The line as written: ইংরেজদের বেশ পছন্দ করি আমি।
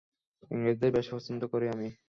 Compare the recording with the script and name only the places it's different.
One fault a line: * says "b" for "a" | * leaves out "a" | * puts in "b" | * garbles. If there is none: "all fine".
all fine